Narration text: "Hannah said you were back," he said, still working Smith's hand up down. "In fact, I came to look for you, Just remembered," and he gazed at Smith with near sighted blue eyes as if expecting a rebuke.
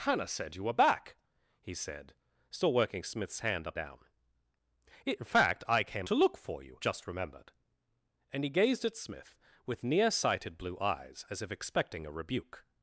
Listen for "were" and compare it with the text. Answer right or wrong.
right